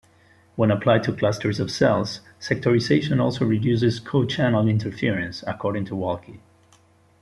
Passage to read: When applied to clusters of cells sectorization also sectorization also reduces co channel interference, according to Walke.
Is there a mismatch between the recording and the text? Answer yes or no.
yes